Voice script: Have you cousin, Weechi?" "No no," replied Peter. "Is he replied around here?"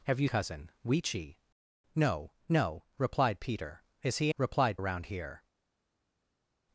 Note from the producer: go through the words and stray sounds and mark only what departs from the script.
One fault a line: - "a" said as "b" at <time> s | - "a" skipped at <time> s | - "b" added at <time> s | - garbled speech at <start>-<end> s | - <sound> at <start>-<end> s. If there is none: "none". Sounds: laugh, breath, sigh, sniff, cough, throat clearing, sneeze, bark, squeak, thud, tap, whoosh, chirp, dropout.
none